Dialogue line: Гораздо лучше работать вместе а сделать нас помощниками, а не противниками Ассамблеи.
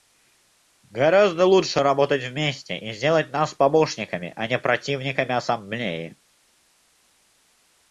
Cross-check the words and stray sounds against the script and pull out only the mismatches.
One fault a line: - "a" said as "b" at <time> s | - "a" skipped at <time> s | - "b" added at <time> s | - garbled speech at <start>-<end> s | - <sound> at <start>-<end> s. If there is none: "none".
- "а" said as "и" at 2.8 s